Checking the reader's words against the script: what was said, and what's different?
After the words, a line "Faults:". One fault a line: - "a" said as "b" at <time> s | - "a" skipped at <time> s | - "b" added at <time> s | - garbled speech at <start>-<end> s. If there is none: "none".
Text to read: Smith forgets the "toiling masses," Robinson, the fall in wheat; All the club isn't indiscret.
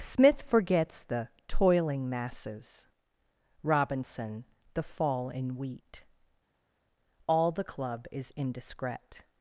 Smith forgets the "toiling masses," Robinson, the fall in wheat; All the club is indiscret.
Faults:
- "isn't" said as "is" at 8.1 s